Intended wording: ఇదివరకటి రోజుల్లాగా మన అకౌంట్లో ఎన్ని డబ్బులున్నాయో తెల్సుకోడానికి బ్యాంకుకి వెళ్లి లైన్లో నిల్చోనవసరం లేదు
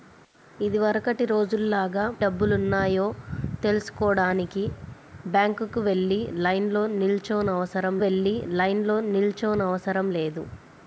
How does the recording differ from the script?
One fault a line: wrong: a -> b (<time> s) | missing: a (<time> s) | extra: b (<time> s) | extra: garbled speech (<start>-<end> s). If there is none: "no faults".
wrong: మన అకౌంట్లో ఎన్ని డబ్బులున్నాయో తెల్సుకోడానికి బ్యాంకుకి -> డబ్బులున్నాయో తెల్సుకోడానికి బ్యాంకుకి వెళ్లి లైన్లో నిల్చోనవసరం (2.2 s)